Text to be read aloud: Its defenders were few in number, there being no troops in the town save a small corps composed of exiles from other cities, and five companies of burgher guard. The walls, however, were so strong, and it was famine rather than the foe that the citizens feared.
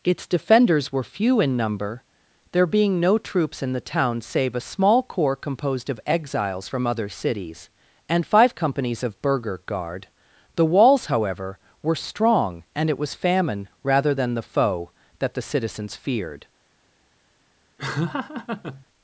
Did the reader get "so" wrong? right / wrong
wrong